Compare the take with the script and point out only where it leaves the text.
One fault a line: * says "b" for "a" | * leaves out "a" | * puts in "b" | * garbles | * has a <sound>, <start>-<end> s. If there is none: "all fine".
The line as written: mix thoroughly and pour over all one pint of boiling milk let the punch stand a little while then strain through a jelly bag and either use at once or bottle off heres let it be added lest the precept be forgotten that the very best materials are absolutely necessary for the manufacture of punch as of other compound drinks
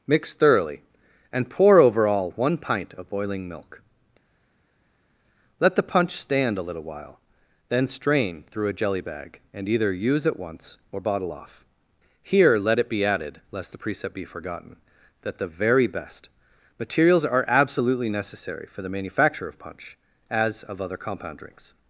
* says "here" for "heres"